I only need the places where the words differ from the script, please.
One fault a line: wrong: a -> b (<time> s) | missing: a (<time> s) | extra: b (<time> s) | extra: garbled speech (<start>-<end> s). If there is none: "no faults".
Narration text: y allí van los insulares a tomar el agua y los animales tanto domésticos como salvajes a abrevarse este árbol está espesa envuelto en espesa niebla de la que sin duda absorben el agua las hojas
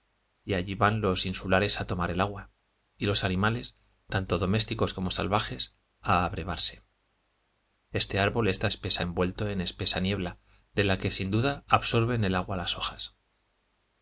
no faults